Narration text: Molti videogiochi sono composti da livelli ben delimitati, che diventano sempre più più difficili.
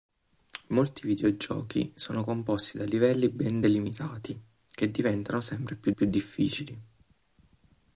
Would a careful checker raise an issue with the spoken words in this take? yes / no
no